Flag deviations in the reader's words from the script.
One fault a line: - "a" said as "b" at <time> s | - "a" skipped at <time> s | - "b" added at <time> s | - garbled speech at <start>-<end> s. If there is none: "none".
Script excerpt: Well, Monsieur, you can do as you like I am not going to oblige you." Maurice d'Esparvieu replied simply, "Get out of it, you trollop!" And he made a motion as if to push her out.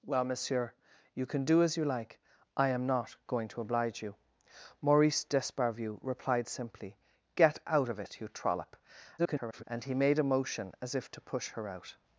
- garbled speech at 9.2-9.6 s